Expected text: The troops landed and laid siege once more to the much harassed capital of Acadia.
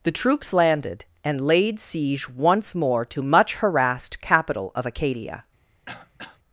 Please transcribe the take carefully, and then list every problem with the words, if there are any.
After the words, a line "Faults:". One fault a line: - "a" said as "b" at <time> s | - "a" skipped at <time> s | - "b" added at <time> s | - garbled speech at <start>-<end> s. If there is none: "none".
The troops landed and laid siege once more to much harassed capital of Acadia.
Faults:
- "the" skipped at 3.2 s